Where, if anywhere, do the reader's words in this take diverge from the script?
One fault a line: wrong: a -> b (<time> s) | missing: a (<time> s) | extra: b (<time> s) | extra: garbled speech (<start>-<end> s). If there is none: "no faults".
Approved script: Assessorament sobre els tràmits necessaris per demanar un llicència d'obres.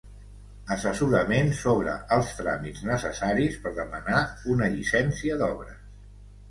wrong: un -> una (4.6 s)